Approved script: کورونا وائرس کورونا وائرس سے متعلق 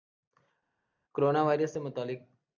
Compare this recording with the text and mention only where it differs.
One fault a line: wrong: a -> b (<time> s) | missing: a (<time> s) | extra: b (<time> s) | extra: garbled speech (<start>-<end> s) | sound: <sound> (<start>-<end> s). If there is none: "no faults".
missing: کورونا وائرس (1.7 s)